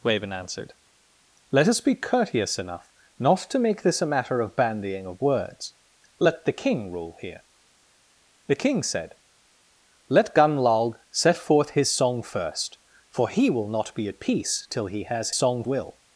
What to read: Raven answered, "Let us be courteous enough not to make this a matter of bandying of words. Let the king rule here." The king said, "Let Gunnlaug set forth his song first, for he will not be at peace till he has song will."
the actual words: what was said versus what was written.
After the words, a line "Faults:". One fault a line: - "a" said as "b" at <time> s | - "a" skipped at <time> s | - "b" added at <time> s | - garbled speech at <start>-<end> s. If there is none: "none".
Raven answered, "Let us be courteous enough not to make this a matter of bandying of words. Let the king rule here." The king said, "Let Gunnlaug set forth his song first, for he will not be at peace till he has song will."
Faults:
none